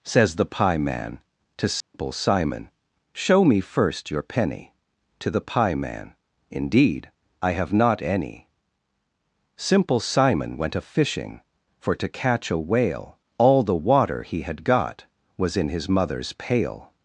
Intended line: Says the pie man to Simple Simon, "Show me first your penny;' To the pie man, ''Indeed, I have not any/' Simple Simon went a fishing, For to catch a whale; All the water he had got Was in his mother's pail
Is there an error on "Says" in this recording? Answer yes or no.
no